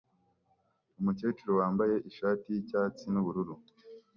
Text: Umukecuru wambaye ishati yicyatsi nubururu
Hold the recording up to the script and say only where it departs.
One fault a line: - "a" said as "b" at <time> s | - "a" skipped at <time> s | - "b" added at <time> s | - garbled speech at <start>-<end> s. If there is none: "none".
none